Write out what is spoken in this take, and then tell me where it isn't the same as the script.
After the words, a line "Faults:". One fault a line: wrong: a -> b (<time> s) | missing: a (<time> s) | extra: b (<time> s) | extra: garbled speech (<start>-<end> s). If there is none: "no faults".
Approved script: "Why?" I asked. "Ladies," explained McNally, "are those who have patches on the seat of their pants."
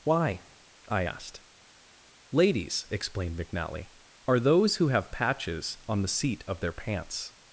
"Why?" I asked. "Ladies," explained McNally, "are those who have patches on the seat of their pants."
Faults:
no faults